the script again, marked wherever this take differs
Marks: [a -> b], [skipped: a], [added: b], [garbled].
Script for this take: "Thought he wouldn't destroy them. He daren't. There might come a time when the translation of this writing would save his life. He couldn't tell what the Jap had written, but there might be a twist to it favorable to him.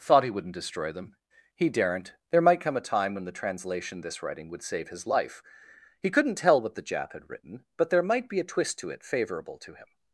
"Thought he wouldn't destroy them. He daren't. There might come a time when the translation [skipped: of] this writing would save his life. He couldn't tell what the Jap had written, but there might be a twist to it favorable to him.